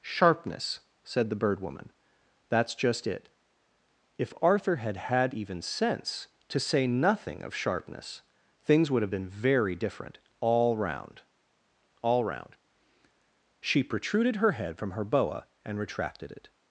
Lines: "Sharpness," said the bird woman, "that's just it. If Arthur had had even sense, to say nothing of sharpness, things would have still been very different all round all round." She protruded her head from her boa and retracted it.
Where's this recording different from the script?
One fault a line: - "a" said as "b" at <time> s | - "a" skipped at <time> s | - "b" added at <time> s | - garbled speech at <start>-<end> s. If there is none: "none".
- "still" skipped at 9.1 s